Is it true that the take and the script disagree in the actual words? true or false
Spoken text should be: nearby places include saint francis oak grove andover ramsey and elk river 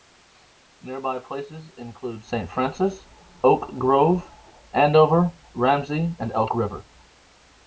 false